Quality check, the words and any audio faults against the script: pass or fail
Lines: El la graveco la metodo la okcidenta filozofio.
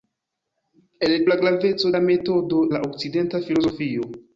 pass